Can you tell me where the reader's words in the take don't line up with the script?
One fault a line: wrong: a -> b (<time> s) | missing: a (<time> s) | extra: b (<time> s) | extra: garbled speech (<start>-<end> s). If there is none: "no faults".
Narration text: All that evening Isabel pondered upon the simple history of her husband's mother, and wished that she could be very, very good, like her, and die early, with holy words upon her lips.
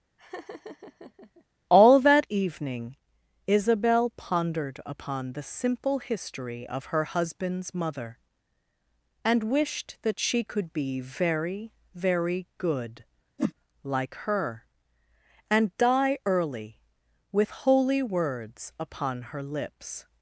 no faults